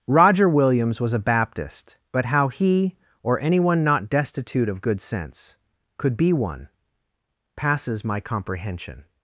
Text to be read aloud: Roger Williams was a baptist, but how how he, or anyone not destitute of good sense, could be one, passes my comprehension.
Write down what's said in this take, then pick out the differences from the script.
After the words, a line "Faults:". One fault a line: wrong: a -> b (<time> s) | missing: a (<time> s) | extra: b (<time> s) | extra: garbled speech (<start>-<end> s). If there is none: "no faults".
Roger Williams was a baptist, but how he, or anyone not destitute of good sense, could be one, passes my comprehension.
Faults:
missing: how (2.5 s)